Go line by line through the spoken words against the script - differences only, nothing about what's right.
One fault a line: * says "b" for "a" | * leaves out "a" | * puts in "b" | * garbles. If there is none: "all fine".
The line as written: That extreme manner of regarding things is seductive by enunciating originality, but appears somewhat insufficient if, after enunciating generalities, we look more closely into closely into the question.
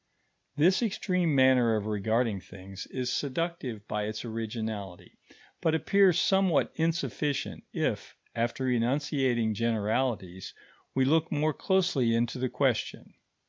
* says "This" for "That"
* says "its" for "enunciating"
* leaves out "closely into"